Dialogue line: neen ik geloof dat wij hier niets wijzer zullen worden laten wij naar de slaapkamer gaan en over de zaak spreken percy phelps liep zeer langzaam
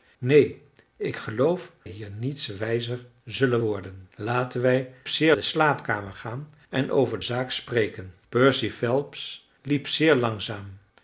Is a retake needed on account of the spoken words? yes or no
yes